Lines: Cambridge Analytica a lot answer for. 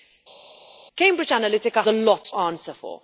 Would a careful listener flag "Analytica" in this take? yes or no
no